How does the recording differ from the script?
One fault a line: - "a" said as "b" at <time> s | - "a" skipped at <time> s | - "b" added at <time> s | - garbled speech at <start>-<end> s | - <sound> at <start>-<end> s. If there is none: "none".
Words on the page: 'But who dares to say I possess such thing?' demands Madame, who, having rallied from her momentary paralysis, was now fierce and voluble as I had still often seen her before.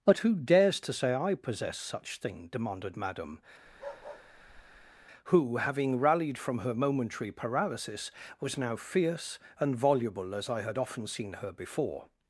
- "demands" said as "demanded" at 2.5 s
- bark at 3.7-5.1 s
- "still" skipped at 10.8 s